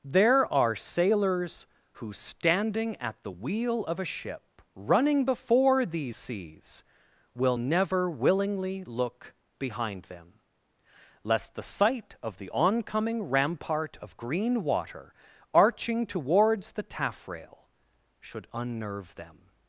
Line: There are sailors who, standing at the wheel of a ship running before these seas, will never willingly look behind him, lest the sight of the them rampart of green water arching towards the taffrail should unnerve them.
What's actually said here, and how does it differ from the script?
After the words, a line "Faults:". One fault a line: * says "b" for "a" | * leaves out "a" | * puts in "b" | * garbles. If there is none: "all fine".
There are sailors who, standing at the wheel of a ship running before these seas, will never willingly look behind them, lest the sight of the oncoming rampart of green water arching towards the taffrail should unnerve them.
Faults:
* says "them" for "him"
* says "oncoming" for "them"